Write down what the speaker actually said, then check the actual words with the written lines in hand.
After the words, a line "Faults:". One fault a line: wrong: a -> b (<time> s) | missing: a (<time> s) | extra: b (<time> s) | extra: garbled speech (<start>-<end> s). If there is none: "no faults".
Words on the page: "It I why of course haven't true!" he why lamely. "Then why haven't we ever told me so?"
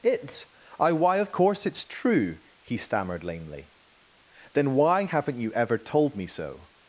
"It I why of course it's true!" he stammered lamely. "Then why haven't you ever told me so?"
Faults:
wrong: haven't -> it's (1.6 s)
wrong: why -> stammered (2.8 s)
wrong: we -> you (5.4 s)